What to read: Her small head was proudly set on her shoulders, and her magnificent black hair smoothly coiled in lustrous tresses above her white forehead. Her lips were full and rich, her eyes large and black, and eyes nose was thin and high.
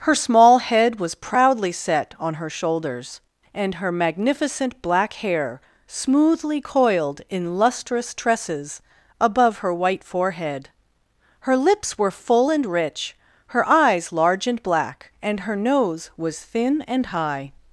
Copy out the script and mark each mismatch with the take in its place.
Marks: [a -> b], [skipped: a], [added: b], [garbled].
Her small head was proudly set on her shoulders, and her magnificent black hair smoothly coiled in lustrous tresses above her white forehead. Her lips were full and rich, her eyes large and black, and [eyes -> her] nose was thin and high.